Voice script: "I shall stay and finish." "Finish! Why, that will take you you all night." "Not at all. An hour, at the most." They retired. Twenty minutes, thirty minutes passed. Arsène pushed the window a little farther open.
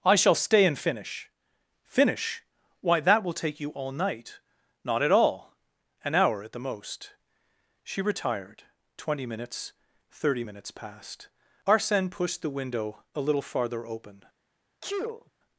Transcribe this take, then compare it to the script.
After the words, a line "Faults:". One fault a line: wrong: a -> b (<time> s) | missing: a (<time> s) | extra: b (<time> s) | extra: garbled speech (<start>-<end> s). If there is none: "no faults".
"I shall stay and finish." "Finish! Why, that will take you all night." "Not at all. An hour, at the most." She retired. Twenty minutes, thirty minutes passed. Arsène pushed the window a little farther open.
Faults:
missing: you (3.7 s)
wrong: They -> She (7.8 s)